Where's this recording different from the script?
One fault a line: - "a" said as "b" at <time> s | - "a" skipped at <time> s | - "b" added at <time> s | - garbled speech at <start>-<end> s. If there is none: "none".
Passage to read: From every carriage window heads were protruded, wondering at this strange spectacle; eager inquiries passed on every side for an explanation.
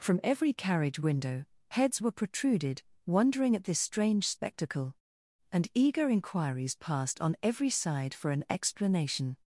- "and" added at 5.5 s